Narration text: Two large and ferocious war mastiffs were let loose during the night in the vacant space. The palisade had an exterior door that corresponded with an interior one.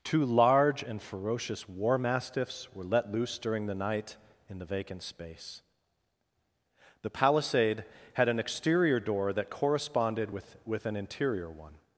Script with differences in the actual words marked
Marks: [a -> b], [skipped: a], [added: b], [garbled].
Two large and ferocious war mastiffs were let loose during the night in the vacant space. The palisade had an exterior door that corresponded with [added: with] an interior one.